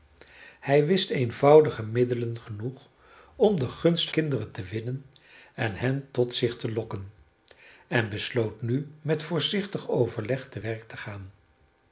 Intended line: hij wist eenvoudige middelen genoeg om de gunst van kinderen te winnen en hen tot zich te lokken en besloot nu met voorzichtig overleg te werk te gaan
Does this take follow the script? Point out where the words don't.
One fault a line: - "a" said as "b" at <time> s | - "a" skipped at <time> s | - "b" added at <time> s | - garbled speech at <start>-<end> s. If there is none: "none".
- "van" skipped at 4.1 s